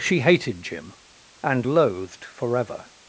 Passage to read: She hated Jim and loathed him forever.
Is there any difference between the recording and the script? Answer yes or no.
yes